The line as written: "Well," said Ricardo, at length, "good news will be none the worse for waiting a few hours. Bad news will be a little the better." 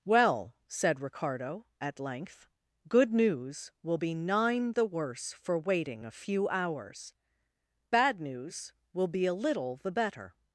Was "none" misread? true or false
true